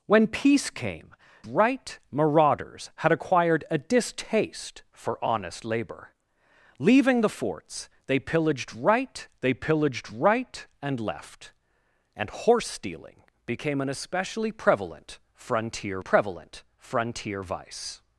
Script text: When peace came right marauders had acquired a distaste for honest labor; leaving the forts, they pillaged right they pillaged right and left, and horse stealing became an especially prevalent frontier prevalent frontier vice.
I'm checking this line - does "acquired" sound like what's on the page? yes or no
yes